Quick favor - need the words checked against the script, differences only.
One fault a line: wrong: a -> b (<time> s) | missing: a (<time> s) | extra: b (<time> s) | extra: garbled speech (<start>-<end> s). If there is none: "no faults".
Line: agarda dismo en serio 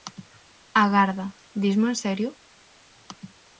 no faults